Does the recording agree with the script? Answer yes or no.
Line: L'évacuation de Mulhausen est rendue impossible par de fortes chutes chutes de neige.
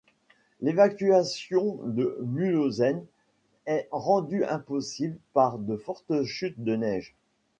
no